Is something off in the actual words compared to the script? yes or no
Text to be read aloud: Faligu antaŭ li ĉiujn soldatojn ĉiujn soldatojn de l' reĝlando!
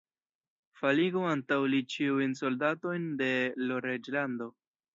yes